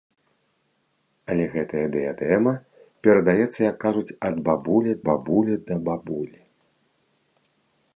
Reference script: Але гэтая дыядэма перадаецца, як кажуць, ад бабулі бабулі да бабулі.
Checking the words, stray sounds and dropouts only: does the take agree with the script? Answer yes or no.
yes